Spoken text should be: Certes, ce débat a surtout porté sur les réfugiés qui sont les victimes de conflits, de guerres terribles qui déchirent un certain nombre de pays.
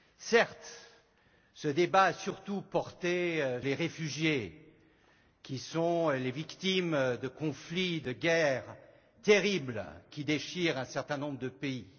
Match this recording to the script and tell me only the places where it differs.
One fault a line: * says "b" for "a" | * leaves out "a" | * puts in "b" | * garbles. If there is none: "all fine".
* leaves out "sur"